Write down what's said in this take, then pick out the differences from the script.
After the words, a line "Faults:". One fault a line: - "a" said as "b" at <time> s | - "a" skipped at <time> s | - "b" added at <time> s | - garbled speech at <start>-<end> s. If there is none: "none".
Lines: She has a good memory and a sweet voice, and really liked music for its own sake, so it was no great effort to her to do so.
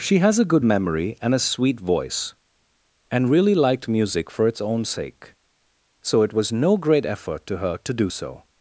She has a good memory and a sweet voice, and really liked music for its own sake, so it was no great effort to her to do so.
Faults:
none